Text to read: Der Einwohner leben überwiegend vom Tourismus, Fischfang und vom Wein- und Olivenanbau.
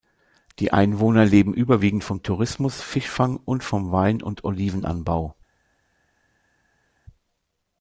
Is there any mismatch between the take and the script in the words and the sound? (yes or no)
yes